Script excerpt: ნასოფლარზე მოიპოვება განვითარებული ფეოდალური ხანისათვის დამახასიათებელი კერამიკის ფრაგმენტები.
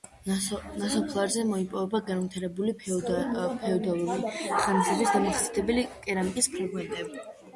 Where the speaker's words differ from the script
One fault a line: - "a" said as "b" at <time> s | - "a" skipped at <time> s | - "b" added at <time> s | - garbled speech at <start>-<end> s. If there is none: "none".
none